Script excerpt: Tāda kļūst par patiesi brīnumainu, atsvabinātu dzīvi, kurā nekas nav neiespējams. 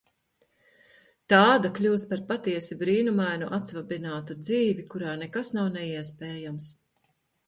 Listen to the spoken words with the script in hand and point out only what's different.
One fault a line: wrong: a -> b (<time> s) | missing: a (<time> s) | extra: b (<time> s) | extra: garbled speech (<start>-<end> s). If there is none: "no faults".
no faults